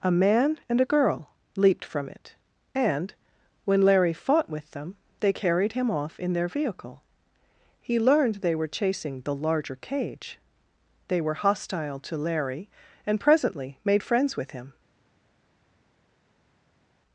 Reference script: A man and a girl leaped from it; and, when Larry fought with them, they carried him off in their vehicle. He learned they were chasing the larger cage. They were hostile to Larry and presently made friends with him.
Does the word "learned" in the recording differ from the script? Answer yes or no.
no